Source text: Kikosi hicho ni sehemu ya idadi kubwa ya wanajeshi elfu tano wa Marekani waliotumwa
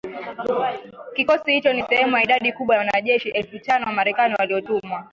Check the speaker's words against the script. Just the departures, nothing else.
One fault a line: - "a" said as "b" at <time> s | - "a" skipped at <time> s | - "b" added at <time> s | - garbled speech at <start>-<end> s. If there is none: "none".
none